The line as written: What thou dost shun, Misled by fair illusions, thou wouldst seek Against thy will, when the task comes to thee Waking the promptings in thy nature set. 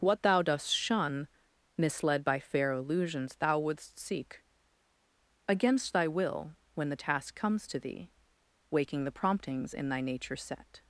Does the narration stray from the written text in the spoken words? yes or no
no